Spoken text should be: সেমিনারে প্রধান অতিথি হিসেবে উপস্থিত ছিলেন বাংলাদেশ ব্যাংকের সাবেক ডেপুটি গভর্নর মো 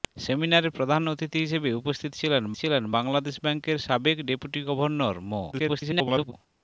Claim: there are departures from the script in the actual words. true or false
true